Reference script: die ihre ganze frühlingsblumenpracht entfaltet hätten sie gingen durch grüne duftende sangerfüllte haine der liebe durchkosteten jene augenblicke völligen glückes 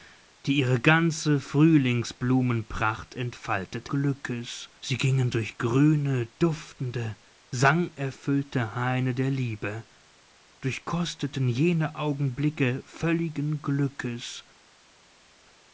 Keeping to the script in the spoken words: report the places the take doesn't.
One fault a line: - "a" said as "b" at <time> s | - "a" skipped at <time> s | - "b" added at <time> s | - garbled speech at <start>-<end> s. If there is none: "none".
- "hätten" said as "glückes" at 3.9 s